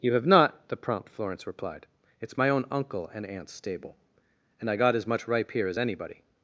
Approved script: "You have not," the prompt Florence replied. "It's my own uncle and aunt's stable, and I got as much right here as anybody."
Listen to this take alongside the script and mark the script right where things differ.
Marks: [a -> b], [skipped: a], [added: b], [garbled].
"You have not," the prompt Florence replied. "It's my own uncle and aunt's stable, and I got as much [right -> ripe] here as anybody."